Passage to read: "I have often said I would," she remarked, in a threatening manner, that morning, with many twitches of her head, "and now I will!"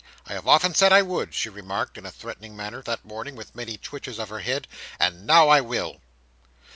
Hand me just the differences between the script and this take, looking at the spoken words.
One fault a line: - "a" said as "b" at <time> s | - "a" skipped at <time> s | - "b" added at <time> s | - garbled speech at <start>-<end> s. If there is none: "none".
none